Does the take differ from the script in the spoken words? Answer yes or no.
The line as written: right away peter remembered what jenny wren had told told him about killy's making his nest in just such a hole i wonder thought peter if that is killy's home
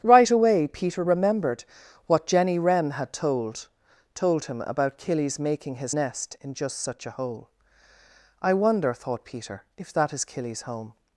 no